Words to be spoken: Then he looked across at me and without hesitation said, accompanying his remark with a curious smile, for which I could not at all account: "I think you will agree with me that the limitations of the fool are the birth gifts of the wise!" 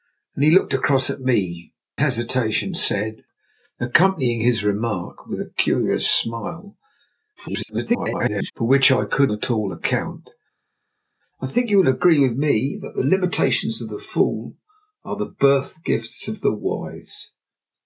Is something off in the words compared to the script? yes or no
yes